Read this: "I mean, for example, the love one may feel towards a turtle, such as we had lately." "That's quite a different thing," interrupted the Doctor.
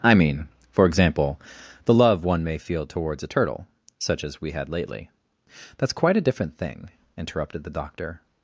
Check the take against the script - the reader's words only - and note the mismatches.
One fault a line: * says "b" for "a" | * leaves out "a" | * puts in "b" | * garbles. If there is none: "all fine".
all fine